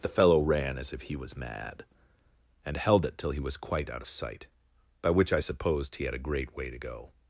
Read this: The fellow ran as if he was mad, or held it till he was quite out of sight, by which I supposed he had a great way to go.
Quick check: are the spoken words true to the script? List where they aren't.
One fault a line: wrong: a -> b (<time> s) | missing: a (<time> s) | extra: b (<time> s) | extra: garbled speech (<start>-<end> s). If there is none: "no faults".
wrong: or -> and (2.6 s)